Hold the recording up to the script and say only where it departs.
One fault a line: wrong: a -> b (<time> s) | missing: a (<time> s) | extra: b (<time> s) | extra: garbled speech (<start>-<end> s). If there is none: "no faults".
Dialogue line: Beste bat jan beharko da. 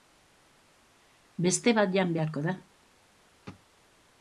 no faults